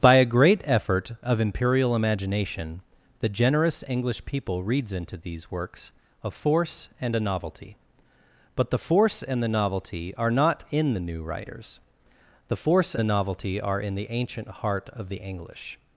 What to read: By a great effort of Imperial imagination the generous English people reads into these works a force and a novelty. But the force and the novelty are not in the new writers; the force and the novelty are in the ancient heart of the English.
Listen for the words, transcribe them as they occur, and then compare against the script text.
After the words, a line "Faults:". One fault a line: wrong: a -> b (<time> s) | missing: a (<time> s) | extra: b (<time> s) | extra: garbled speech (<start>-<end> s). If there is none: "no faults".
By a great effort of Imperial imagination the generous English people reads into these works a force and a novelty. But the force and the novelty are not in the new writers; the force the novelty are in the ancient heart of the English.
Faults:
missing: and (12.9 s)